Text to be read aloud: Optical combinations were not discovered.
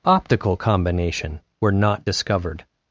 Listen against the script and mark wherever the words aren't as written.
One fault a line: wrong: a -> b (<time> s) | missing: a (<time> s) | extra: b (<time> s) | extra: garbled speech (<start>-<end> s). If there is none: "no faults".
wrong: combinations -> combination (0.6 s)